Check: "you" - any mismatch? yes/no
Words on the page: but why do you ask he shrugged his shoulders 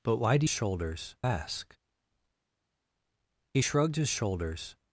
yes